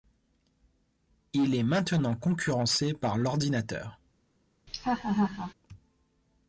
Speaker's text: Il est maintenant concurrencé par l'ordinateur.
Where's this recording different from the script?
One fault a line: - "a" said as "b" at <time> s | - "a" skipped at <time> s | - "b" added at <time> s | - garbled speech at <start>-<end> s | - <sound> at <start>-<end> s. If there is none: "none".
- laugh at 4.7-5.5 s